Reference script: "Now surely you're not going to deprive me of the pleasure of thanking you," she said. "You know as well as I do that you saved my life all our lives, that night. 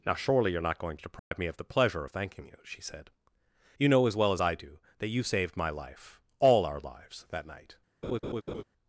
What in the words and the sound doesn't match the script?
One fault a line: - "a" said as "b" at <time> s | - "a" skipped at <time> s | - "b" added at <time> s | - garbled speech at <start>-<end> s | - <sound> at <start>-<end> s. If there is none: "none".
- dropout at 1.2-1.3 s
- laugh at 8.0-8.6 s